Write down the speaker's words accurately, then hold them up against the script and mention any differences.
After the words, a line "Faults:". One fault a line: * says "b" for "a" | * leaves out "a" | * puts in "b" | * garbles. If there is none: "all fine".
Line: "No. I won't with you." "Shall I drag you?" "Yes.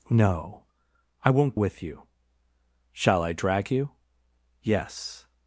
"No. I won't with you." "Shall I drag you?" "Yes.
Faults:
all fine